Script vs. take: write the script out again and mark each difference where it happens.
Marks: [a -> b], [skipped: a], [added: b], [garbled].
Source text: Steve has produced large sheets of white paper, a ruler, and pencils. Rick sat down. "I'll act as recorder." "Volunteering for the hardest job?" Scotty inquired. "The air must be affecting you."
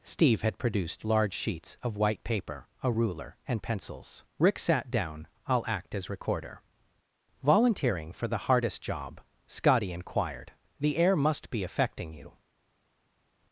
Steve [has -> had] produced large sheets of white paper, a ruler, and pencils. Rick sat down. "I'll act as recorder." "Volunteering for the hardest job?" Scotty inquired. "The air must be affecting you."